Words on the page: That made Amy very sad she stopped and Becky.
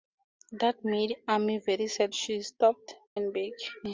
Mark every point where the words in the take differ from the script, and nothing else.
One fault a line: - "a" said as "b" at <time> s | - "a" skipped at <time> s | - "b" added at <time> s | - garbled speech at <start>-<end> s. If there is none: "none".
none